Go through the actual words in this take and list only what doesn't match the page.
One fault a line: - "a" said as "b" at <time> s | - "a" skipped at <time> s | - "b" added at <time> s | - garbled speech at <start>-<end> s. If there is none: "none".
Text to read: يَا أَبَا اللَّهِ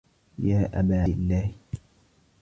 none